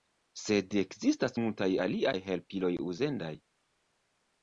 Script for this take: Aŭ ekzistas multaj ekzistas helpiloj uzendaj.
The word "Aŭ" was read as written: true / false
false